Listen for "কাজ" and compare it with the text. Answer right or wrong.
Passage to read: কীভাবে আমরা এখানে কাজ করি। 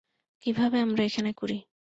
wrong